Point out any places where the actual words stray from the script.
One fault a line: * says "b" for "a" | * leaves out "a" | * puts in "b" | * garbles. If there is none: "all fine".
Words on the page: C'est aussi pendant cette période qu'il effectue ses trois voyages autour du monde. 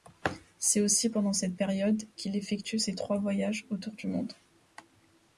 all fine